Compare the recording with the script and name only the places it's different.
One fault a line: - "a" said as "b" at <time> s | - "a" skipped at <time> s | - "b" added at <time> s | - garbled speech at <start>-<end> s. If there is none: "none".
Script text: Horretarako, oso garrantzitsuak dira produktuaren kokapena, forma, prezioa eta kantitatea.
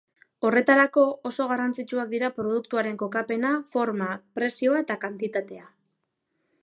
none